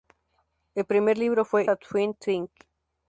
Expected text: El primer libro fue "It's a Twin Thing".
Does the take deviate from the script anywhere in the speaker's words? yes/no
yes